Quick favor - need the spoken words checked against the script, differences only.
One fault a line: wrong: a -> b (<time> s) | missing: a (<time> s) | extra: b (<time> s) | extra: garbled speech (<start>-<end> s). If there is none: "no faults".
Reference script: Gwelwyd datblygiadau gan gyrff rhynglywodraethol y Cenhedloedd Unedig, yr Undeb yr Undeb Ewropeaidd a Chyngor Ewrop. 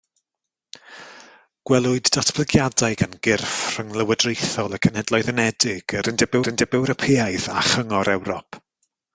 no faults